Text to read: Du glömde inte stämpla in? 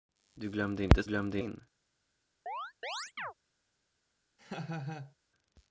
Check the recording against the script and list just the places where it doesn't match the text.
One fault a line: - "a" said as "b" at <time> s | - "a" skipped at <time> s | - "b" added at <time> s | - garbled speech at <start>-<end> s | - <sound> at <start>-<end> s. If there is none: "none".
- "stämpla" said as "glömde" at 1.0 s
- chirp at 2.5-3.3 s
- laugh at 4.4-5.2 s